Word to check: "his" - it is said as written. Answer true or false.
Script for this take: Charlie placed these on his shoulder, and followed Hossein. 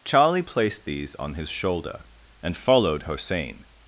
true